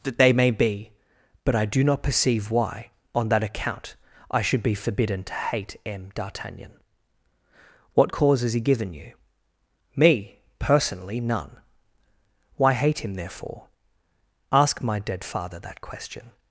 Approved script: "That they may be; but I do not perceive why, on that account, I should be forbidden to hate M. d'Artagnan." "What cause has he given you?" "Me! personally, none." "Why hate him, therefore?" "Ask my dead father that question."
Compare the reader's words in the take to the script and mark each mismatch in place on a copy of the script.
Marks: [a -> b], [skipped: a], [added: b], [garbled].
"That they may be; but I do not perceive why, on that account, I should be forbidden to hate M. d'Artagnan." "What cause has he given you?" "Me! personally, none." "Why hate him, therefore?" "Ask my dead father that question."